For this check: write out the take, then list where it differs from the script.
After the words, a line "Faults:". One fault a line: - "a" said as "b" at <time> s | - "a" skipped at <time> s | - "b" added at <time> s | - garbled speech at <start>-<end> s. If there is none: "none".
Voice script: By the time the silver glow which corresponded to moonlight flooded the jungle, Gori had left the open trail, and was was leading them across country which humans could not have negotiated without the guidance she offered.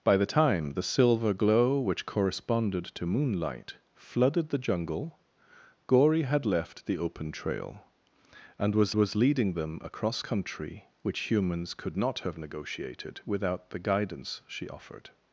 By the time the silver glow which corresponded to moonlight flooded the jungle, Gori had left the open trail, and was was leading them across country which humans could not have negotiated without the guidance she offered.
Faults:
none